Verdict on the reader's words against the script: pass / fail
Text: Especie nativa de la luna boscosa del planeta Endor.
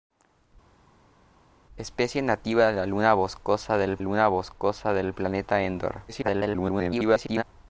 fail